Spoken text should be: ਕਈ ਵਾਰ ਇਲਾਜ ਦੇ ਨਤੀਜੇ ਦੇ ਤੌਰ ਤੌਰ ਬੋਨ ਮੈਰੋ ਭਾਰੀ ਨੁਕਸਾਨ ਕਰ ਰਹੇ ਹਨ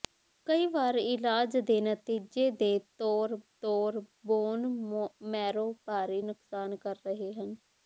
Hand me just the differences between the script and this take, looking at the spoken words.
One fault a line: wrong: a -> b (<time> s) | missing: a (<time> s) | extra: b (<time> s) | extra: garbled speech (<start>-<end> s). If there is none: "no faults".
no faults